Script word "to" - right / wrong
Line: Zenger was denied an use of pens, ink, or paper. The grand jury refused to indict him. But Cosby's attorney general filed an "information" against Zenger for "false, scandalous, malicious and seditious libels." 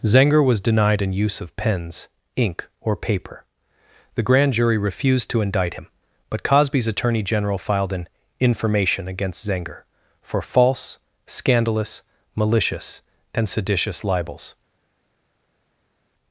right